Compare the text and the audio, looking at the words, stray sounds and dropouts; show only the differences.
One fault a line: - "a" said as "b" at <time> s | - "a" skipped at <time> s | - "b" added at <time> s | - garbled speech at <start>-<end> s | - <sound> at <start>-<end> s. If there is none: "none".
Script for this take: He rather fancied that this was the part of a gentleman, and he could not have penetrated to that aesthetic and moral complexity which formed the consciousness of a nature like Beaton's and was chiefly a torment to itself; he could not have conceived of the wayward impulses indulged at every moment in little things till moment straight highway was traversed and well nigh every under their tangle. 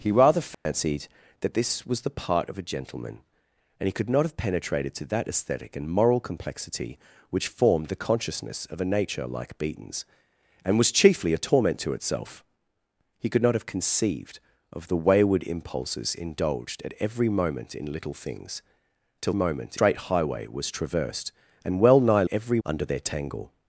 - dropout at 0.5-0.7 s